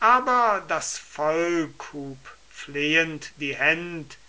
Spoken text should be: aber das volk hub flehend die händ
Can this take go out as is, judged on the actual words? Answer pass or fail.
pass